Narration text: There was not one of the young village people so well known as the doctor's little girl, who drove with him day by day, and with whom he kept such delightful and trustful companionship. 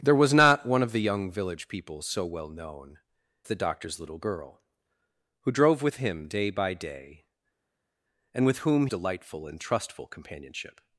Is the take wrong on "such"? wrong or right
wrong